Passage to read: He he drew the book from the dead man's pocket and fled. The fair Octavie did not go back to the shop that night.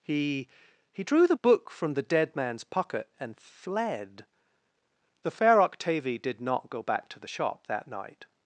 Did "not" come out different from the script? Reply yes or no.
no